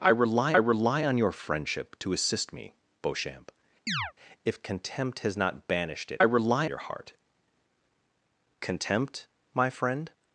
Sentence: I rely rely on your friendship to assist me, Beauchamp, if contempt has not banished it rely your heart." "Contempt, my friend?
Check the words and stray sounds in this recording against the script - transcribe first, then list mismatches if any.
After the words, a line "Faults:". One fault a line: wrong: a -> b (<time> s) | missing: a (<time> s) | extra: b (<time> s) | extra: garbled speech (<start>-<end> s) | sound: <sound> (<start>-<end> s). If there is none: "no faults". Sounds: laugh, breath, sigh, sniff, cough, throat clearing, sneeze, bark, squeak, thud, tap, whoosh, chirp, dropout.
I rely rely on your friendship to assist me, Beauchamp, if contempt has not banished it rely your heart." "Contempt, my friend?
Faults:
sound: chirp (3.9-4.1 s)